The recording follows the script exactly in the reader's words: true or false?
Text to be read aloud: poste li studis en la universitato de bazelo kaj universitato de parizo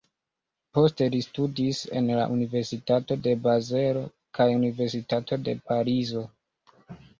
true